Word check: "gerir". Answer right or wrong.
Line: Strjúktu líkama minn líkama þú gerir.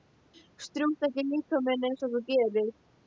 right